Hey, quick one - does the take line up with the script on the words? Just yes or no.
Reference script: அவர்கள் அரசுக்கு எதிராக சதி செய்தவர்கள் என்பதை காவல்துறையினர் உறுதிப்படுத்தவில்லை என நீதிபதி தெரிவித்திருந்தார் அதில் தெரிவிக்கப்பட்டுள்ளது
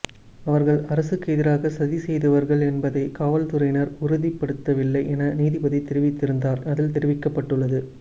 yes